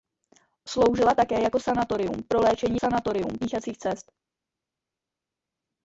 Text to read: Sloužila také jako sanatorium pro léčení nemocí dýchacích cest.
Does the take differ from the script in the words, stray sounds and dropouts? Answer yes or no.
yes